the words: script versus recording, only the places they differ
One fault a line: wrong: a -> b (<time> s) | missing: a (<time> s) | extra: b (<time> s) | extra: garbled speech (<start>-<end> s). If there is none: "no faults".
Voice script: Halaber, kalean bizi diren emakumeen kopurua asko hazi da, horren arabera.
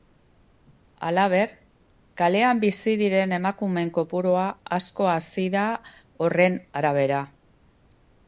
no faults